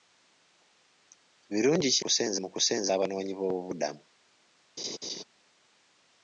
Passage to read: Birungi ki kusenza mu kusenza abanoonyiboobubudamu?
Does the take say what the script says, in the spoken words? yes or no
yes